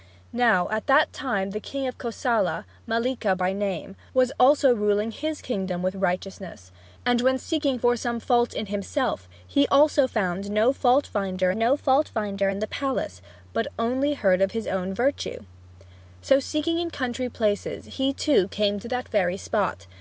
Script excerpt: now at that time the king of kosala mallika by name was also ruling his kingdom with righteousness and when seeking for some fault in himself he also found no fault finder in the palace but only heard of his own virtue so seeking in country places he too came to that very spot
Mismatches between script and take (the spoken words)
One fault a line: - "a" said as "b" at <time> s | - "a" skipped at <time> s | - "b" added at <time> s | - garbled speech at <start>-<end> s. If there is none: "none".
- "no fault finder" added at 11.5 s